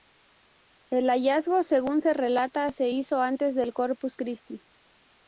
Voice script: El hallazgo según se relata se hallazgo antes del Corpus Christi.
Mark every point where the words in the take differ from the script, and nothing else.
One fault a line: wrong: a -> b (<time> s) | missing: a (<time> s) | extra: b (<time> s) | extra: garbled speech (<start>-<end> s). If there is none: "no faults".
wrong: hallazgo -> hizo (2.9 s)